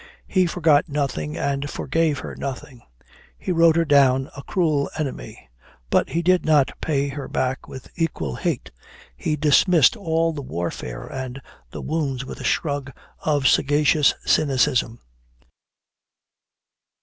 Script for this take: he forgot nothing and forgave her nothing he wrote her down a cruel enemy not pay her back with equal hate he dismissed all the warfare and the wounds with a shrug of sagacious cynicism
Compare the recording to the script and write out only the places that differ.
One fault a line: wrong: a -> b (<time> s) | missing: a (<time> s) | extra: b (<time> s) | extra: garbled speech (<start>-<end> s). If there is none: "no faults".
extra: but he did (5.9 s)